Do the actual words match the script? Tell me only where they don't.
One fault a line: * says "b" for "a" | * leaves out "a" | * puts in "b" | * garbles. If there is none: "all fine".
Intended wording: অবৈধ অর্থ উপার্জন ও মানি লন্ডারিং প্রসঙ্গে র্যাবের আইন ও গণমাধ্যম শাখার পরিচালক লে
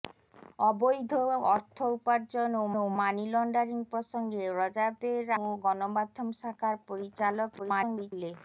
* puts in "ও"
* leaves out "আইন"
* garbles